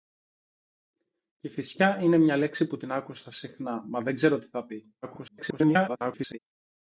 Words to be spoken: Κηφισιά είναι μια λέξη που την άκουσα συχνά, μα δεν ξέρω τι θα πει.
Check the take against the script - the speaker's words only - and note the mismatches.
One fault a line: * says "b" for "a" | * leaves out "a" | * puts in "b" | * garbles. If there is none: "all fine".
* garbles